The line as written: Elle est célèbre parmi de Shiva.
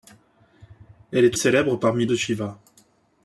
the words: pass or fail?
pass